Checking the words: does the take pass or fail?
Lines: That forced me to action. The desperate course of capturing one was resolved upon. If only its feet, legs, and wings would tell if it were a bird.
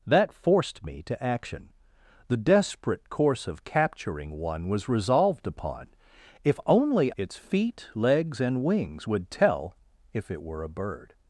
pass